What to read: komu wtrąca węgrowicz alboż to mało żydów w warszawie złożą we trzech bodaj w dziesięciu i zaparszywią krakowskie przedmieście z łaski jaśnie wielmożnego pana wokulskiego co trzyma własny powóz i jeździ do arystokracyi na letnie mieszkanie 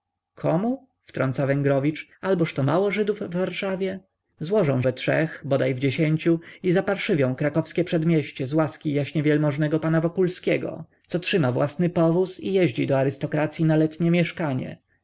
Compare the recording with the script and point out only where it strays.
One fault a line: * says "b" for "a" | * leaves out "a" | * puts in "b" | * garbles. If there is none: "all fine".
all fine